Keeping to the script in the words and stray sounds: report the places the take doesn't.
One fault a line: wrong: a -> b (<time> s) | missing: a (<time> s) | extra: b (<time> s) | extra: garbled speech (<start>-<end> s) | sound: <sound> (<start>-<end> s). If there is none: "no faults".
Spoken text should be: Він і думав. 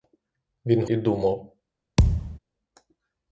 sound: thud (2.0-2.4 s)